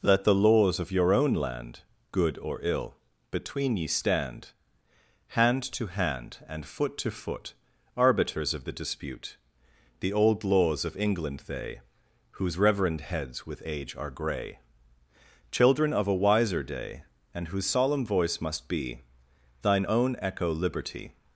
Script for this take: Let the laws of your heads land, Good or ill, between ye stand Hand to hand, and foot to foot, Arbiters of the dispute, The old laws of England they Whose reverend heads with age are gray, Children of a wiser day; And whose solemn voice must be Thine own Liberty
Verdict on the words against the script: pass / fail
fail